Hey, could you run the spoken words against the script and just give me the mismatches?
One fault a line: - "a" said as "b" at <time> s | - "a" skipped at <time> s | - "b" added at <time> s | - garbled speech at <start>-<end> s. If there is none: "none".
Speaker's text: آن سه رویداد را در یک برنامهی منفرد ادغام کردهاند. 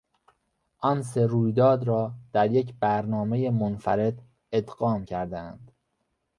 none